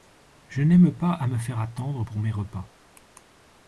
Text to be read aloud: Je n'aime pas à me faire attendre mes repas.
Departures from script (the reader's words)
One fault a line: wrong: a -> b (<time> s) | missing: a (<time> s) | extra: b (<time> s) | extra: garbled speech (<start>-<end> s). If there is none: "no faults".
extra: pour (2.0 s)